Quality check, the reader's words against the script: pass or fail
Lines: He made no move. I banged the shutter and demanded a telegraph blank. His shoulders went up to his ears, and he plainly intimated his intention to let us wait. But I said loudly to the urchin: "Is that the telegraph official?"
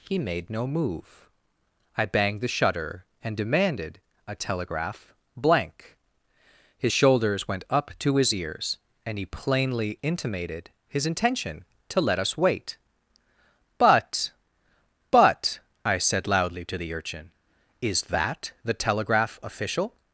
fail